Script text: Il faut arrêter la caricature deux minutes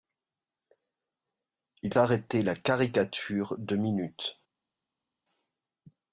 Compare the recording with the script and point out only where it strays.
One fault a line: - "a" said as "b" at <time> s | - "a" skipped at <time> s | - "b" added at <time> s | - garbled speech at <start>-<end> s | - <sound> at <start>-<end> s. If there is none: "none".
- "faut" skipped at 1.9 s